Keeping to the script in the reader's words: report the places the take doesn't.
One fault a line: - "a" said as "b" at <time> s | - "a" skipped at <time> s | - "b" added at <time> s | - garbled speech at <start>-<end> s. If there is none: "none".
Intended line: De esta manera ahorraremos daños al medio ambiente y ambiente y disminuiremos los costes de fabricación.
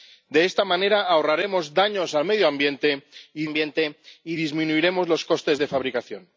none